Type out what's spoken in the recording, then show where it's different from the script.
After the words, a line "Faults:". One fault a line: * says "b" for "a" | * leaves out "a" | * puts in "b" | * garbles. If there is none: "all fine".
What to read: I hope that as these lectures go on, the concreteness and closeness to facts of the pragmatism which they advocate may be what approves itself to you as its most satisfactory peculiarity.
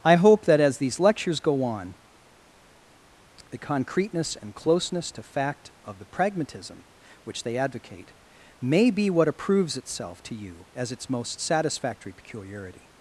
I hope that as these lectures go on, the concreteness and closeness to fact of the pragmatism which they advocate may be what approves itself to you as its most satisfactory peculiarity.
Faults:
* says "fact" for "facts"